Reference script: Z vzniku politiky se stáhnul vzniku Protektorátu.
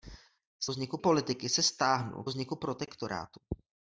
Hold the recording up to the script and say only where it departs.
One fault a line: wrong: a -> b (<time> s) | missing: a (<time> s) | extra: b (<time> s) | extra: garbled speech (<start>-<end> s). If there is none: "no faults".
no faults